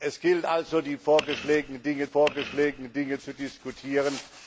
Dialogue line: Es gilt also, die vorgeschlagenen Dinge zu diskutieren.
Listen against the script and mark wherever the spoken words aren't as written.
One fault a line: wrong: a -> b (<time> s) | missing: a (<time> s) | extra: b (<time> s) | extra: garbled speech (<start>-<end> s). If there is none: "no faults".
extra: vorgeschlagenen Dinge (2.0 s)